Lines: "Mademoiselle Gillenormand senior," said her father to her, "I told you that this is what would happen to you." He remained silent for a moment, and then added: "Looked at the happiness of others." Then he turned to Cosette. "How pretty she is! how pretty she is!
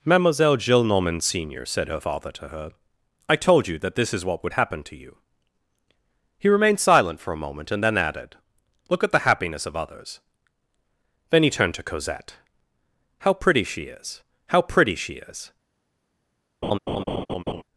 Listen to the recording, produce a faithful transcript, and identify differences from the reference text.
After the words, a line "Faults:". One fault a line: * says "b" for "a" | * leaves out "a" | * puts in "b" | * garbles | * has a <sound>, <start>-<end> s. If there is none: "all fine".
"Mademoiselle Gillenormand senior," said her father to her, "I told you that this is what would happen to you." He remained silent for a moment, and then added: "Look at the happiness of others." Then he turned to Cosette. "How pretty she is! how pretty she is!
Faults:
* says "Look" for "Looked"
* has a laugh, 16.6-17.6 s